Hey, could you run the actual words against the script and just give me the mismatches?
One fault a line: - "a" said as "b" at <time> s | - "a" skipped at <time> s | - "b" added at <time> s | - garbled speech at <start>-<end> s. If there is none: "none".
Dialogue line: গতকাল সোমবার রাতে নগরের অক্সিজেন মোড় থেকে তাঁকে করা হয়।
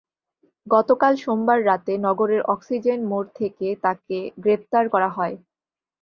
- "গ্রেপ্তার" added at 4.4 s